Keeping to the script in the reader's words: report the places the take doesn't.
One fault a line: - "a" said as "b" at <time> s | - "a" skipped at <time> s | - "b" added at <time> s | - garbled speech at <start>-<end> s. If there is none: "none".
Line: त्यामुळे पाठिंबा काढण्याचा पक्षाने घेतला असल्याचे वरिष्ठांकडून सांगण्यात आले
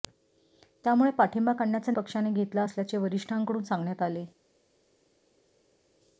none